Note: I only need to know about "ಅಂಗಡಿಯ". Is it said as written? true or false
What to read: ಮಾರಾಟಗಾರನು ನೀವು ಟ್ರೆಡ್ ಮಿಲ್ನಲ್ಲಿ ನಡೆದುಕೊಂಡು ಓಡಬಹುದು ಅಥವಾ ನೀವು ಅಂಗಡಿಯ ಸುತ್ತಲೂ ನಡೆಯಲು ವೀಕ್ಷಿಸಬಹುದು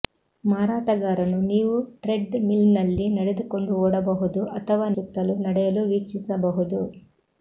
false